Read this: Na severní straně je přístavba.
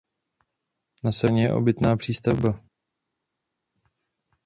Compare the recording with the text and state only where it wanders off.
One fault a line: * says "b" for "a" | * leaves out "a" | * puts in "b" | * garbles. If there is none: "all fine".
* puts in "obytná"